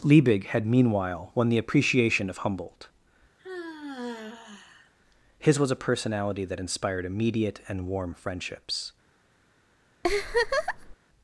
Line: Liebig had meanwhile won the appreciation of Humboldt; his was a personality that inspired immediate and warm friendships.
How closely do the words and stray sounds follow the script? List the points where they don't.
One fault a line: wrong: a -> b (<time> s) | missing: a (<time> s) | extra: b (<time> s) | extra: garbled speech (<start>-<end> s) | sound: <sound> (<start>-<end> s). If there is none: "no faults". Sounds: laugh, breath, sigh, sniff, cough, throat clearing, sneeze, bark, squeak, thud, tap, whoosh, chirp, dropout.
sound: sigh (3.4-4.9 s)
sound: laugh (10.0-11.0 s)